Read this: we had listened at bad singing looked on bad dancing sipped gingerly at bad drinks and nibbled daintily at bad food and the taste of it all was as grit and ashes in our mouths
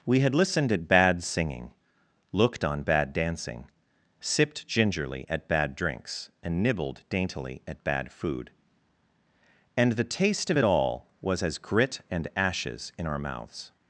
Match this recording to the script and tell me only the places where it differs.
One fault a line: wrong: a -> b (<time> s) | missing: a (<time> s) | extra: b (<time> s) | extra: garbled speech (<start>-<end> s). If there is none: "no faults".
no faults